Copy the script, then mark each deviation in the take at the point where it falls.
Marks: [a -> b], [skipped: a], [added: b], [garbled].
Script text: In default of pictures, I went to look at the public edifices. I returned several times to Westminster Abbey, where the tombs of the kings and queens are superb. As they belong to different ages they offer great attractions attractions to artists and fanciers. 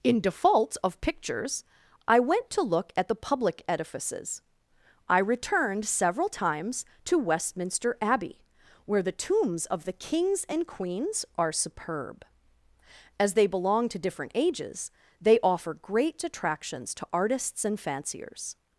In default of pictures, I went to look at the public edifices. I returned several times to Westminster Abbey, where the tombs of the kings and queens are superb. As they belong to different ages they offer great attractions [skipped: attractions] to artists and fanciers.